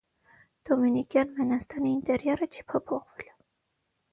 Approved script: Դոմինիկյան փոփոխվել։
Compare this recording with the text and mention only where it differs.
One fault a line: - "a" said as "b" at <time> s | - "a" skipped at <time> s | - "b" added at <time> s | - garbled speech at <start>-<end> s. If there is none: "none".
- "մենաստանի ինտերիերը չի" added at 1.4 s